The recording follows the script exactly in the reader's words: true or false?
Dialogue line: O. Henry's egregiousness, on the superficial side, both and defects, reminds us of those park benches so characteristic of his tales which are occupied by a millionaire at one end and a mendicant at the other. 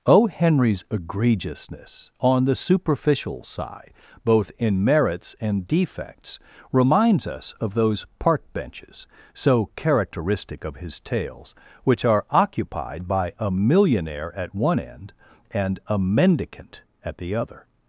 false